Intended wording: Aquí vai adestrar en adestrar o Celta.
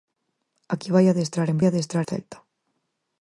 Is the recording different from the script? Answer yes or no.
no